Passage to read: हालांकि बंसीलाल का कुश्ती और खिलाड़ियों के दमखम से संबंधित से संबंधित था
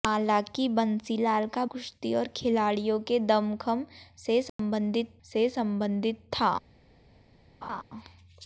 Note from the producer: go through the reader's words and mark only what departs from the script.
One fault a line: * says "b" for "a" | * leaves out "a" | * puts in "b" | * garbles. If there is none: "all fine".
all fine